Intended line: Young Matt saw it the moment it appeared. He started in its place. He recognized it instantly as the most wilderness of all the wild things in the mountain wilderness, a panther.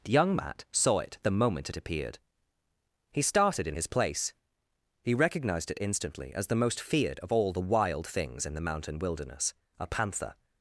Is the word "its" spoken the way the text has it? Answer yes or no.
no